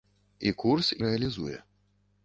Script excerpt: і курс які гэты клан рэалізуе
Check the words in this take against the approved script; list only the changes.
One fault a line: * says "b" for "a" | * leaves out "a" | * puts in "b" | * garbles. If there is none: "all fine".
* leaves out "які гэты клан"